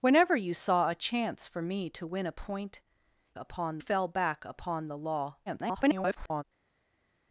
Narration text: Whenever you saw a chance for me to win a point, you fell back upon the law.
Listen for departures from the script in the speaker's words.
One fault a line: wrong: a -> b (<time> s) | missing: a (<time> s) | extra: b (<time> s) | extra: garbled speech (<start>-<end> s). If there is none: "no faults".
wrong: you -> upon (3.4 s)
extra: garbled speech (5.5-6.4 s)